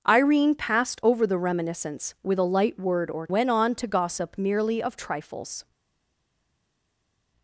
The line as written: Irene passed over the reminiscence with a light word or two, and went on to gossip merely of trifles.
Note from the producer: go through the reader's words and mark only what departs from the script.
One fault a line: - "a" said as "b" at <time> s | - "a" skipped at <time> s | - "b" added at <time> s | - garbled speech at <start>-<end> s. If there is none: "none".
- "two and" skipped at 3.3 s